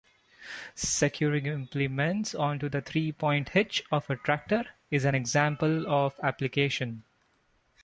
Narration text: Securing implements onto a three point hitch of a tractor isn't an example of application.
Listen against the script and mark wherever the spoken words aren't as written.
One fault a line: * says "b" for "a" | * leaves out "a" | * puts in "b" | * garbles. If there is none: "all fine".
* says "the" for "a"
* says "is" for "isn't"